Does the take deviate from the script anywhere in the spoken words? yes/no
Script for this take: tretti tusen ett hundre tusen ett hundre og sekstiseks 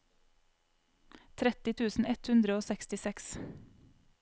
yes